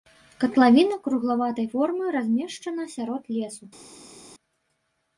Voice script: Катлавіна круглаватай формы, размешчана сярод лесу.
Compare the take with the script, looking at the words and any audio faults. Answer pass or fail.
pass